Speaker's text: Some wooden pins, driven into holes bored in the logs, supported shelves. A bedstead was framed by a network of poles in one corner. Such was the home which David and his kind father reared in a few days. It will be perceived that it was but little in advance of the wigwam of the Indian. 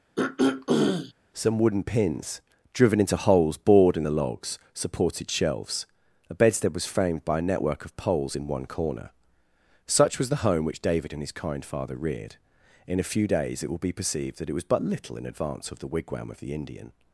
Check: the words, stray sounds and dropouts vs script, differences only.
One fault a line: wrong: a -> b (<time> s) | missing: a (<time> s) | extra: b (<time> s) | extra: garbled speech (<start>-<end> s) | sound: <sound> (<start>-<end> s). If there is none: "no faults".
sound: throat clearing (0.2-1.1 s)